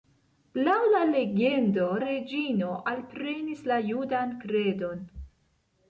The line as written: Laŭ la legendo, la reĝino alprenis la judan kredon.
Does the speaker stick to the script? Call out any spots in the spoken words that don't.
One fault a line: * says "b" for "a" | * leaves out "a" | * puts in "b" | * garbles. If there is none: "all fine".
* leaves out "la"